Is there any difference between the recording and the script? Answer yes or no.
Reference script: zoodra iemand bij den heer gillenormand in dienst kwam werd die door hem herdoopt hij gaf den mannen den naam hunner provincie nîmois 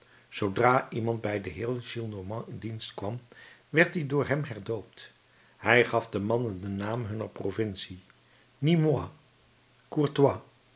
no